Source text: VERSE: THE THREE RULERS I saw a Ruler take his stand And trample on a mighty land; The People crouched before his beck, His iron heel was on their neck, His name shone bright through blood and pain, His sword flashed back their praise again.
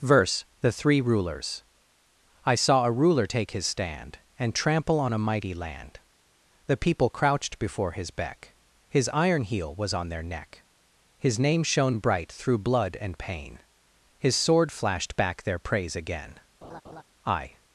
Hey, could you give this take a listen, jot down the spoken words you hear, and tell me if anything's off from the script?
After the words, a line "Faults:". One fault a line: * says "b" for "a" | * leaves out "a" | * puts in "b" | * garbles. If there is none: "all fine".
VERSE: THE THREE RULERS I saw a Ruler take his stand And trample on a mighty land; The People crouched before his beck, His iron heel was on their neck, His name shone bright through blood and pain, His sword flashed back their praise again. I
Faults:
* puts in "I"